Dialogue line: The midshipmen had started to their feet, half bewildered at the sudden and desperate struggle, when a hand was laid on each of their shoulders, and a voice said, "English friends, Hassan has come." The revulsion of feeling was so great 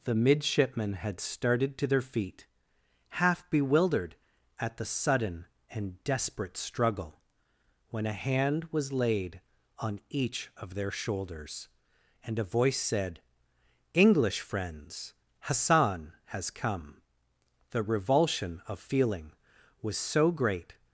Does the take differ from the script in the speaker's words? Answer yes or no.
no